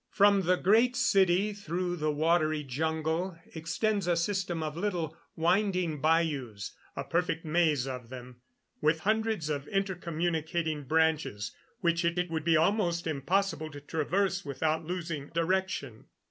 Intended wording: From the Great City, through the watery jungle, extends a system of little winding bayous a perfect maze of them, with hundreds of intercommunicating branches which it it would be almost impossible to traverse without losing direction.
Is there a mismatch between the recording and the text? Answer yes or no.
no